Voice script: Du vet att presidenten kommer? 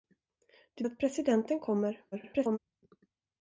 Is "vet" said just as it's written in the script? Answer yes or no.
no